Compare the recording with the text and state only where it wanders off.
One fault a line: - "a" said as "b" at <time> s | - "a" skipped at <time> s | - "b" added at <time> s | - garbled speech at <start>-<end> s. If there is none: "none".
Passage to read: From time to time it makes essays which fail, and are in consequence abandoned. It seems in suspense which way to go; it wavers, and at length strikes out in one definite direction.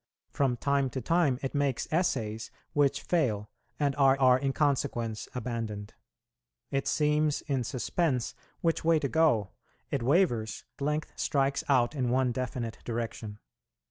- "are" added at 4.2 s
- "and at" skipped at 10.6 s